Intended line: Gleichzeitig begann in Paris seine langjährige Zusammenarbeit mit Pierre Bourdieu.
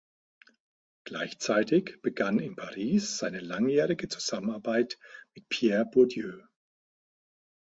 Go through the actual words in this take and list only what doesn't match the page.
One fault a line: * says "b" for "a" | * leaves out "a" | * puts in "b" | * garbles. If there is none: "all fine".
all fine